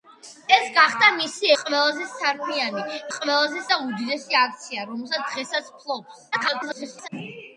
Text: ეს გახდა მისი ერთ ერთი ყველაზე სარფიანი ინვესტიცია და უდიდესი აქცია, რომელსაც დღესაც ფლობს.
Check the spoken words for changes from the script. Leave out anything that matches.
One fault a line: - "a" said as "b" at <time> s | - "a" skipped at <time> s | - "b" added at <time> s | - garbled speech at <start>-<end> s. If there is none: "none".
- "ერთ ერთი" skipped at 1.5 s
- "ინვესტიცია" said as "ყველაზე" at 3.1 s
- garbled speech at 6.3-7.1 s